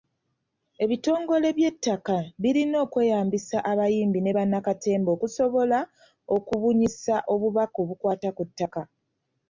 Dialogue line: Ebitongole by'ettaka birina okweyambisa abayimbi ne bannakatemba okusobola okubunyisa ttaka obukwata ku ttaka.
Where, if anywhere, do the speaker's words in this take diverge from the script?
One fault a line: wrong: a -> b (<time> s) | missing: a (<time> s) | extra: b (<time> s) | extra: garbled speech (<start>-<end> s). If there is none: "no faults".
wrong: ttaka -> obubaka (7.3 s)